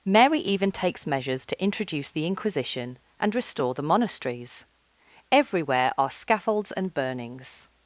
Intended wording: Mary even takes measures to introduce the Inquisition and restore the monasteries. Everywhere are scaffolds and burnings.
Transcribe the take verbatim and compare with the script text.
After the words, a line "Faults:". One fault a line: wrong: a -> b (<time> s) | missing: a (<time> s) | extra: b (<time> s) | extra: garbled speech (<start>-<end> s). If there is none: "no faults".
Mary even takes measures to introduce the Inquisition and restore the monasteries. Everywhere are scaffolds and burnings.
Faults:
no faults